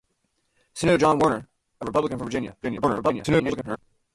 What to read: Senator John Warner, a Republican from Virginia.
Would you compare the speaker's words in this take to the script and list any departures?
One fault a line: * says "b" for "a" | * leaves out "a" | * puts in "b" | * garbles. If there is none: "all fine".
* garbles